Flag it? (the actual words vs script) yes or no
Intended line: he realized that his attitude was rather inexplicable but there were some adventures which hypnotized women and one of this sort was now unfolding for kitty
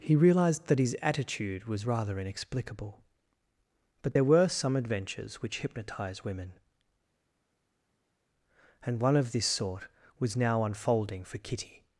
yes